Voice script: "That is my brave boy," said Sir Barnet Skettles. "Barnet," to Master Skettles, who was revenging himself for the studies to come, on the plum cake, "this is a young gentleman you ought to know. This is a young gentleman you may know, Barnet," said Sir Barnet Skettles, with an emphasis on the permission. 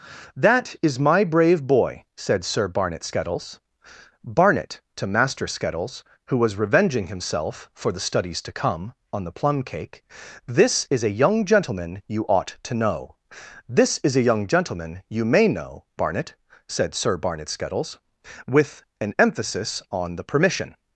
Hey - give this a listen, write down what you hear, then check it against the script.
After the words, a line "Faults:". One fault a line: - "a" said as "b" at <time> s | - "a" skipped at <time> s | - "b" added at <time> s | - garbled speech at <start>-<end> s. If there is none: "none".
"That is my brave boy," said Sir Barnet Skettles. "Barnet," to Master Skettles, who was revenging himself for the studies to come, on the plum cake, "this is a young gentleman you ought to know. This is a young gentleman you may know, Barnet," said Sir Barnet Skettles, with an emphasis on the permission.
Faults:
none